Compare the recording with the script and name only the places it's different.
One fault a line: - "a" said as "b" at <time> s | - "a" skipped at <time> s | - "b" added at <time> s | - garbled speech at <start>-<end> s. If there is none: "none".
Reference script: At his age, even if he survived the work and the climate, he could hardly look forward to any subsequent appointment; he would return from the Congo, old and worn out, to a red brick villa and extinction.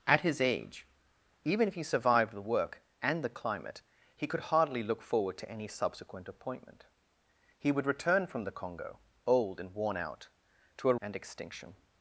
- "red brick villa" skipped at 10.9 s